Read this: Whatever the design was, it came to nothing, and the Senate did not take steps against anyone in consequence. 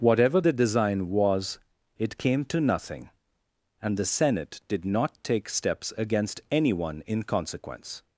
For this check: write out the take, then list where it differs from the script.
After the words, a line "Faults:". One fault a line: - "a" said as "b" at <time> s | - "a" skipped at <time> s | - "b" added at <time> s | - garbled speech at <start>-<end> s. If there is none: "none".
Whatever the design was, it came to nothing, and the Senate did not take steps against anyone in consequence.
Faults:
none